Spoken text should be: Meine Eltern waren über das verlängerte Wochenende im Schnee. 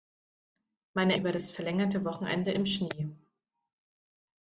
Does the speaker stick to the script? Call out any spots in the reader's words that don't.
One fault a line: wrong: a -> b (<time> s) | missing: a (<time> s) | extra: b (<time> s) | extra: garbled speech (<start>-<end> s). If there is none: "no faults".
missing: Eltern waren (1.1 s)